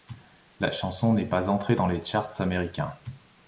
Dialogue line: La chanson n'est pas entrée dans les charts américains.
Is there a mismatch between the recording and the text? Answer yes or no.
no